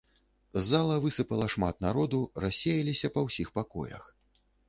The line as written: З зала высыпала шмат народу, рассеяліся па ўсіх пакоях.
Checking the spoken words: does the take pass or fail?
pass